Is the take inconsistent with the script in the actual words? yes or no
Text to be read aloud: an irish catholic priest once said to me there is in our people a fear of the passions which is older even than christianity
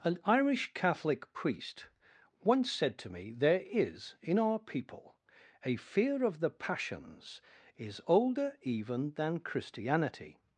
yes